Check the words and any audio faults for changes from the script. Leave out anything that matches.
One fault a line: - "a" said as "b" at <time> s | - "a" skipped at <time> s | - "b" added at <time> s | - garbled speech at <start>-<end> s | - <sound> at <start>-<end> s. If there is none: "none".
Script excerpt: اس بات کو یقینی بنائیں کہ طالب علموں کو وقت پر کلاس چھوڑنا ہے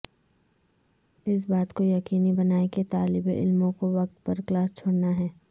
none